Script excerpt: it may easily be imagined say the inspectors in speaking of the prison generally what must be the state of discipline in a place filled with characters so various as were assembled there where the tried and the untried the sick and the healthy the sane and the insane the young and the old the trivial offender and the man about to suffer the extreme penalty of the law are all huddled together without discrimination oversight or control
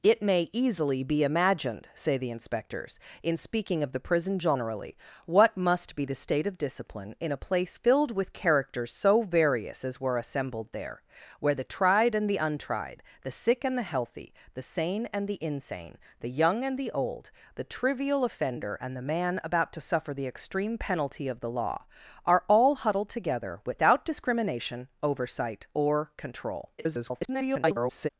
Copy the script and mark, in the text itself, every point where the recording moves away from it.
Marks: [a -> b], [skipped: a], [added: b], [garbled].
it may easily be imagined say the inspectors in speaking of the prison generally what must be the state of discipline in a place filled with characters so various as were assembled there where the tried and the untried the sick and the healthy the sane and the insane the young and the old the trivial offender and the man about to suffer the extreme penalty of the law are all huddled together without discrimination oversight or control [garbled]